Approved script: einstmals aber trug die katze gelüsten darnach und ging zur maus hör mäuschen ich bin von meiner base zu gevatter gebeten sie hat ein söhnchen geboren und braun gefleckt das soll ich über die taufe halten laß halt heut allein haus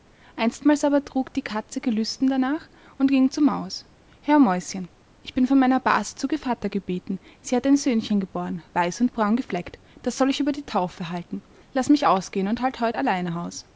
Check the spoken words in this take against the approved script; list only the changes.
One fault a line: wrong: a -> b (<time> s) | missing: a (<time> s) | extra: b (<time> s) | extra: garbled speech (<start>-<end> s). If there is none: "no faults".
extra: weiß (8.7 s)
extra: mich ausgehen und (11.9 s)